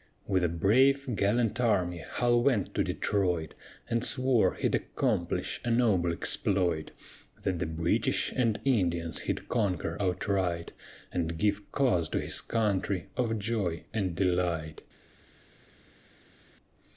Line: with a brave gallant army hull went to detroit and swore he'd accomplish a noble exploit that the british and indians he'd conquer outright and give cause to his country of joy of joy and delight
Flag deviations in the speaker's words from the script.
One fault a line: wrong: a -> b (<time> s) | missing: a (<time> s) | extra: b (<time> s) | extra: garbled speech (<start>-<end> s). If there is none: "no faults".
missing: of joy (13.8 s)